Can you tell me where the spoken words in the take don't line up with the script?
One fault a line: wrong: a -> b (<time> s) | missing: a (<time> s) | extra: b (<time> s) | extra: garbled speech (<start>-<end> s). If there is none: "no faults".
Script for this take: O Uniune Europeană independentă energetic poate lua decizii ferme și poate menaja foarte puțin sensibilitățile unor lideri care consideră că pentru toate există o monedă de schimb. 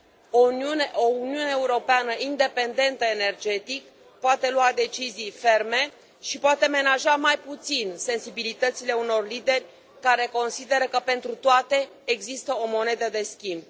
wrong: foarte -> mai (7.1 s)